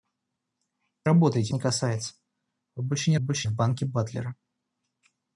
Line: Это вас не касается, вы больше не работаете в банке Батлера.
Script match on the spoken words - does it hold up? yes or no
no